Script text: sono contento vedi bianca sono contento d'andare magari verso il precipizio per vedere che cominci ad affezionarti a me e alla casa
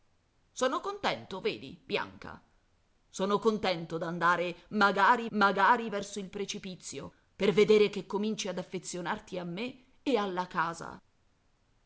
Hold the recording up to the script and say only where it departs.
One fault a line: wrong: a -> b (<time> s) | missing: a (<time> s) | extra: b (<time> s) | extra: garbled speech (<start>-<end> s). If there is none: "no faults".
extra: magari (5.3 s)